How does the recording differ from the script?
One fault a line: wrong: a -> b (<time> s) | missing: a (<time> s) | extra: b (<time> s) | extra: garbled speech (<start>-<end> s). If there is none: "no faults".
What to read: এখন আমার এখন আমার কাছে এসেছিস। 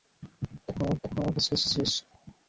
no faults